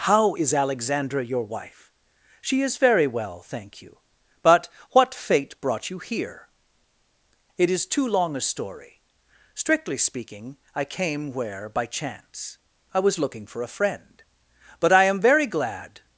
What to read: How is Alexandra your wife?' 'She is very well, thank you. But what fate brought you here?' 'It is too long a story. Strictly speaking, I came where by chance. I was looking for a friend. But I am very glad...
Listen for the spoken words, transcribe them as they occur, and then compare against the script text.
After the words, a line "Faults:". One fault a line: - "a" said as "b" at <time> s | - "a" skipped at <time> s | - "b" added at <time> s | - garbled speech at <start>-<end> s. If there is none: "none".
How is Alexandra your wife?' 'She is very well, thank you. But what fate brought you here?' 'It is too long a story. Strictly speaking, I came where by chance. I was looking for a friend. But I am very glad...
Faults:
none